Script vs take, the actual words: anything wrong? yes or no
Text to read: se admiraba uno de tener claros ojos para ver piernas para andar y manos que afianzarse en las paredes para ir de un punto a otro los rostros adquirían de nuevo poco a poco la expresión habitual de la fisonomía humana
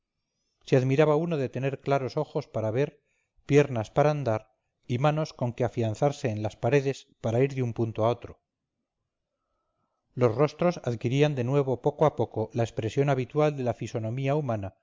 yes